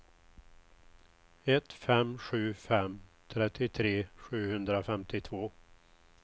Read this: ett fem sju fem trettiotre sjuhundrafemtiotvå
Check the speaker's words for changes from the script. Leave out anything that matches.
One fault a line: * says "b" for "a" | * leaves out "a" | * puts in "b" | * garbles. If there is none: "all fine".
all fine